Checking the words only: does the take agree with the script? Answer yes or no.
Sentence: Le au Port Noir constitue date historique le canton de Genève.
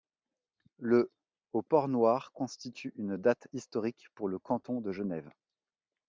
no